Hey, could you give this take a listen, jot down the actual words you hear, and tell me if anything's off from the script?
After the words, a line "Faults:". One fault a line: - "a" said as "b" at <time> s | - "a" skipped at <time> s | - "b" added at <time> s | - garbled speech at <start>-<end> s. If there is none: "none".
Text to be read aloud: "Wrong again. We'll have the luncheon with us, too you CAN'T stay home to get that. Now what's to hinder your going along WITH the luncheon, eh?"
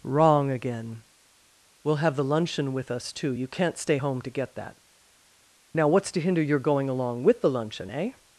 "Wrong again. We'll have the luncheon with us, too you CAN'T stay home to get that. Now what's to hinder your going along WITH the luncheon, eh?"
Faults:
none